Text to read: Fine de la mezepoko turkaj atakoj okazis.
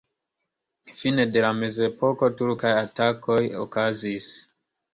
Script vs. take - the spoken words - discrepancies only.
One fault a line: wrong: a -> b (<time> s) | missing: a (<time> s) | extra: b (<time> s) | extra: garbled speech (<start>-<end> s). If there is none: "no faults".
no faults